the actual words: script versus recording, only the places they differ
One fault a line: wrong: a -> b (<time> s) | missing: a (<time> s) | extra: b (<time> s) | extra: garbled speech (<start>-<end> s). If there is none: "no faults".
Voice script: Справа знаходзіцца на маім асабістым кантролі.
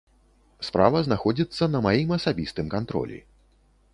no faults